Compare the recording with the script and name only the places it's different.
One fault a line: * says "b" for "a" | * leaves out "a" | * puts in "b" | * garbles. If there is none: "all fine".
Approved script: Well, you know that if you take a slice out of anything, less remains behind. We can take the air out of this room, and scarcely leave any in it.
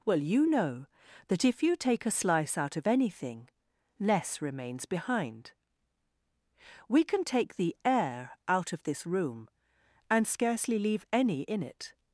all fine